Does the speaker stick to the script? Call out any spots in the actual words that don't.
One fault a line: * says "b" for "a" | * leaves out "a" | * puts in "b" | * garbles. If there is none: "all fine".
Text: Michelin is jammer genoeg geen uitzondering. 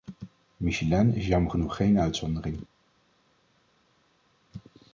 all fine